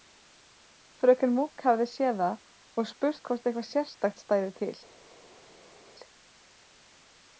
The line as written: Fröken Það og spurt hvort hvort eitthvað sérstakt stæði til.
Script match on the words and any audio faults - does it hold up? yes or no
no